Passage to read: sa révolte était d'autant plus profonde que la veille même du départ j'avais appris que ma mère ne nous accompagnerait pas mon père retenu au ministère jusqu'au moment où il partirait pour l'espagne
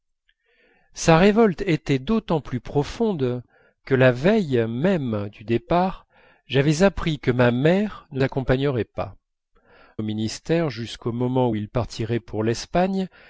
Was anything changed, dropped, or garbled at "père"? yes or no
yes